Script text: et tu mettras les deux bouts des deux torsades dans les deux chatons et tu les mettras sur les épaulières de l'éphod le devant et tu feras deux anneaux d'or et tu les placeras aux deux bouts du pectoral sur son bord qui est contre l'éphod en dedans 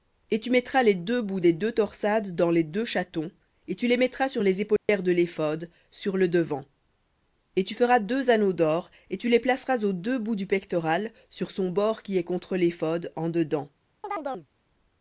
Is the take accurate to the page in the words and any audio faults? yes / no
no